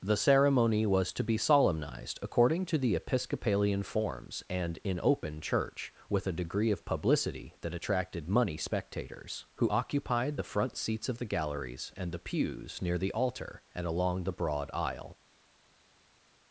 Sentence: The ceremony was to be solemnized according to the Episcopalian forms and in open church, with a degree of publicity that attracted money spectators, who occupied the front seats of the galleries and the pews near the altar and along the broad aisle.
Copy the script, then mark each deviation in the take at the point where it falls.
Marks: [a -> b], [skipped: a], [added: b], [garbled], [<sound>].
The ceremony was to be solemnized according to the Episcopalian forms and in open church, with a degree of publicity that attracted money spectators, who occupied the front seats of the galleries and the pews near the altar and along the broad aisle.